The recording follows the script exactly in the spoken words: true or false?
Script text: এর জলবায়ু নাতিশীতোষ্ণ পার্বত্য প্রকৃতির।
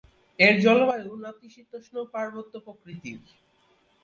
true